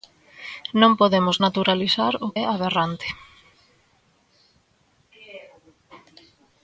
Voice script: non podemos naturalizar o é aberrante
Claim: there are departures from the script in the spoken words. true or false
false